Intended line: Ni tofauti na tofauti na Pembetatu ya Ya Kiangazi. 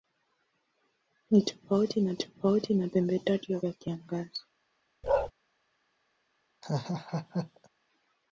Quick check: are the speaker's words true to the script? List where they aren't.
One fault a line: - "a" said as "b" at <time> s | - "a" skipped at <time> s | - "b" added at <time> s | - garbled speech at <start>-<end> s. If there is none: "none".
none